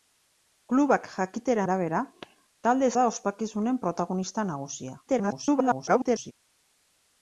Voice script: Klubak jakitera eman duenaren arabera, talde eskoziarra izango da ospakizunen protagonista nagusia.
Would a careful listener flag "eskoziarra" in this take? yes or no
yes